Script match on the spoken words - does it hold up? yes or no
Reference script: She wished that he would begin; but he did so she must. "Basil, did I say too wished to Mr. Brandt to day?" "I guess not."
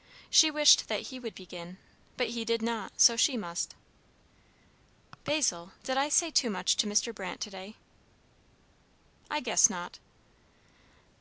no